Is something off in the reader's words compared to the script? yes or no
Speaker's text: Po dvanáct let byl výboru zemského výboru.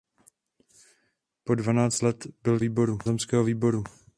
no